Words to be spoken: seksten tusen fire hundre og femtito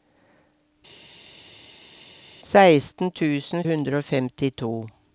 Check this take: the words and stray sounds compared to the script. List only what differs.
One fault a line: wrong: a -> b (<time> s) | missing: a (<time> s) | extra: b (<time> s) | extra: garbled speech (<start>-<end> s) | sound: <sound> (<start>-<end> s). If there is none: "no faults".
missing: fire (3.6 s)